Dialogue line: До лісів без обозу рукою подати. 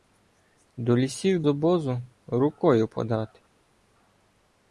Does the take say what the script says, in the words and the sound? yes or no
no